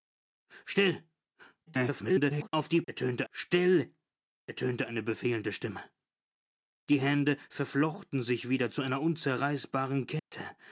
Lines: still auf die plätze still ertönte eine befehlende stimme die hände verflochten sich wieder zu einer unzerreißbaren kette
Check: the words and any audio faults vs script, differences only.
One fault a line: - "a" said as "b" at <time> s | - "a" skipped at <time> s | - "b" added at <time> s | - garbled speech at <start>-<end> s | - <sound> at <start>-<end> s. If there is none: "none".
- garbled speech at 1.7-2.5 s
- "plätze" said as "ertönte" at 2.9 s
- dropout at 10.2-10.3 s